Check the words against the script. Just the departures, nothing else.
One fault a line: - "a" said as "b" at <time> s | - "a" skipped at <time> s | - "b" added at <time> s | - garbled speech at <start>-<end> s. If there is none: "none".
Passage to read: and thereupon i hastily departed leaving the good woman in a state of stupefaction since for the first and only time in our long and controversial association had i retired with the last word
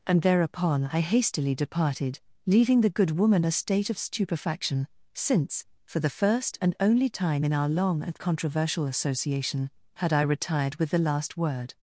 - "in" skipped at 3.5 s